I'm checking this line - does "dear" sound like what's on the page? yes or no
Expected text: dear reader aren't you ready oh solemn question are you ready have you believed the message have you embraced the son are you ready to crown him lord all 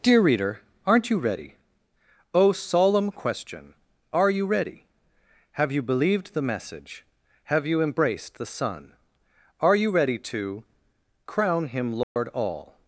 yes